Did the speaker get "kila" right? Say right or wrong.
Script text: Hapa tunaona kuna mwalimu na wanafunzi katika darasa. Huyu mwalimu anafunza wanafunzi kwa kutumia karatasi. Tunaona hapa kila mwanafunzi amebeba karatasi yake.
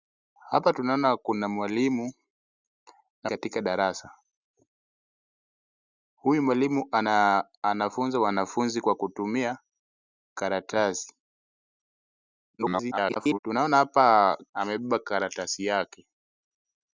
wrong